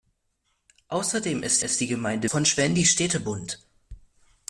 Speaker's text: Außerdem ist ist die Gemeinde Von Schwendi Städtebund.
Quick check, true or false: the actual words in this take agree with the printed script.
true